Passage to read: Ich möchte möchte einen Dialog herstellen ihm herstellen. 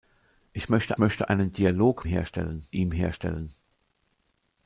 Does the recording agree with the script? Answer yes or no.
yes